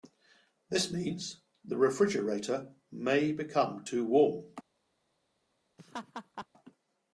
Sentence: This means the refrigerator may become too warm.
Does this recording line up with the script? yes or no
yes